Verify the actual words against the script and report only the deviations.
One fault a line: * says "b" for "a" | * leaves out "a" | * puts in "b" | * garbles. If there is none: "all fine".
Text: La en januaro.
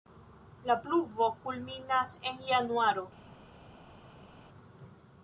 * puts in "pluvo kulminas"